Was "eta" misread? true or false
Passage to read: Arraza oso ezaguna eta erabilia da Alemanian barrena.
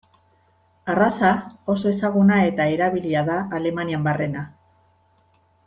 false